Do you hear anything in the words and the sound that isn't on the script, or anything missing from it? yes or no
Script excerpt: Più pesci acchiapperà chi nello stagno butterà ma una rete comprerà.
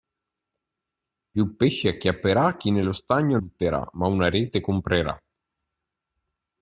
no